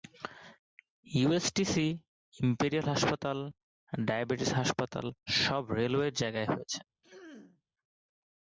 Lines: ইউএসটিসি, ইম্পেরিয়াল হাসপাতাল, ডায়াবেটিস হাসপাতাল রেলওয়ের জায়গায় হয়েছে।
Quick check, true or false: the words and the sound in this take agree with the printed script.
false